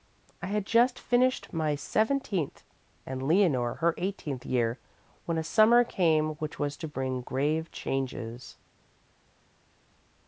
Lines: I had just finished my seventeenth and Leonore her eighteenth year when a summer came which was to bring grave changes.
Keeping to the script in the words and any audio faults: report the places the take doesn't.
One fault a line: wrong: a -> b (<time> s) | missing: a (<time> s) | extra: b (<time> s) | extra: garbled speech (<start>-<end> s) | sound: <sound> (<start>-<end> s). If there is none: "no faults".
no faults